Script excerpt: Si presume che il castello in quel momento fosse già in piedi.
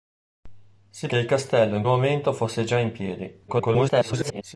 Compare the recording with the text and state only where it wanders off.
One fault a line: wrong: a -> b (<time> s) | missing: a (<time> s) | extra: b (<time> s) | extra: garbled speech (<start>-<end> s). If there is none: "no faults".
missing: presume (1.1 s)
missing: quel (1.8 s)
extra: garbled speech (3.5-4.6 s)